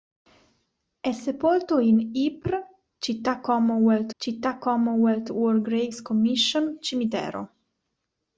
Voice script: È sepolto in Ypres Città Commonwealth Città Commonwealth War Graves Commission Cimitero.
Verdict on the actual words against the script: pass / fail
pass